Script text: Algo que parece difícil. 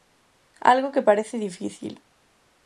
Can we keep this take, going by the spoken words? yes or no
yes